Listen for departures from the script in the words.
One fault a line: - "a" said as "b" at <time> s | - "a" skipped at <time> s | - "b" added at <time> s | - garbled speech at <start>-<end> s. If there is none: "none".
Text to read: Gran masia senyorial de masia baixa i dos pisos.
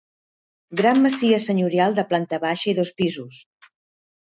- "masia" said as "planta" at 2.1 s